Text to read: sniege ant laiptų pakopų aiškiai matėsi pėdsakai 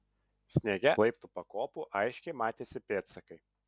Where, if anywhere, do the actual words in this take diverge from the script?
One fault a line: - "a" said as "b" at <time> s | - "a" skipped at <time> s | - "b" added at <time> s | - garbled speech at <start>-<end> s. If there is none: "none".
- "ant" skipped at 0.9 s